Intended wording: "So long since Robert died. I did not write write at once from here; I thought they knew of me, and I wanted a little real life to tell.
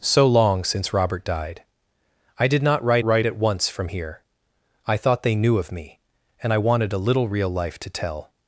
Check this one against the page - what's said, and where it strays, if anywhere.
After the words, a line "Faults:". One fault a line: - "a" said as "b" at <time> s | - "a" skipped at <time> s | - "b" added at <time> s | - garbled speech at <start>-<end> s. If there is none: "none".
"So long since Robert died. I did not write write at once from here; I thought they knew of me, and I wanted a little real life to tell.
Faults:
none